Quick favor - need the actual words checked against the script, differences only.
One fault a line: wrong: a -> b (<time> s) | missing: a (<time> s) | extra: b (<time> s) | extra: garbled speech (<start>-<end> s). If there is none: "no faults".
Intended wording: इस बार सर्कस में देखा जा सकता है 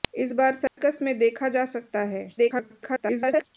extra: garbled speech (2.4-3.5 s)